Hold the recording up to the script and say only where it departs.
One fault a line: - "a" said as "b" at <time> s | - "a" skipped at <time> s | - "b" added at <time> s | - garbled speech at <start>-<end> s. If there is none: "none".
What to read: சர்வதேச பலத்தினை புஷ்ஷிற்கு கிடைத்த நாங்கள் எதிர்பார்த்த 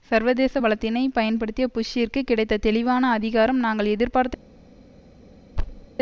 - "பயன்படுத்திய" added at 1.1 s
- "தெளிவான அதிகாரம்" added at 2.6 s